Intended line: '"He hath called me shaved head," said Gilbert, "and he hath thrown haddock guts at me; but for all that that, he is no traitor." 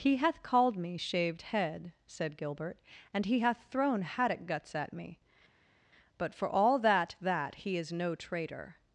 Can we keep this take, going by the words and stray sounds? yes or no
yes